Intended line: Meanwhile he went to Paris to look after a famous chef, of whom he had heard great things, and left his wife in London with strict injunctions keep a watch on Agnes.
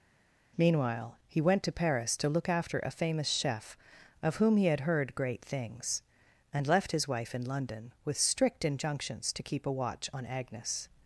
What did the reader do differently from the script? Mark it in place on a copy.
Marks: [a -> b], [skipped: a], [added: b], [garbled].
Meanwhile he went to Paris to look after a famous chef, of whom he had heard great things, and left his wife in London with strict injunctions [added: to] keep a watch on Agnes.